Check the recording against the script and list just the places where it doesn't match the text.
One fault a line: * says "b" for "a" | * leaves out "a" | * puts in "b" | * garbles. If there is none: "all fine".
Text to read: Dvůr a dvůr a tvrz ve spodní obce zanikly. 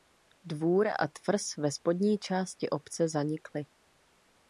* leaves out "dvůr a"
* puts in "části"